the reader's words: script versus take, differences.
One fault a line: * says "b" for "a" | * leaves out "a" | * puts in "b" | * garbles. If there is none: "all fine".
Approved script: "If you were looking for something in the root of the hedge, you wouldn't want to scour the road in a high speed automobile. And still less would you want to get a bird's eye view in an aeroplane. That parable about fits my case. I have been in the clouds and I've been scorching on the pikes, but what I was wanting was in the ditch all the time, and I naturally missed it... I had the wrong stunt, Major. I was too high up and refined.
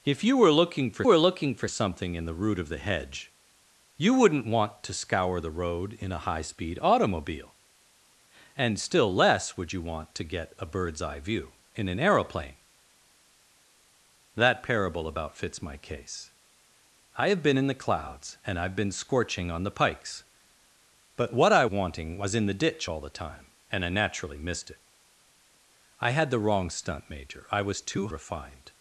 * puts in "were looking for"
* leaves out "was"
* leaves out "high up and"